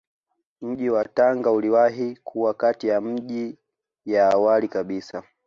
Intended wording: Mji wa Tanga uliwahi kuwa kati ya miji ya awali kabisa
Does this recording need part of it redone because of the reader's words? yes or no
no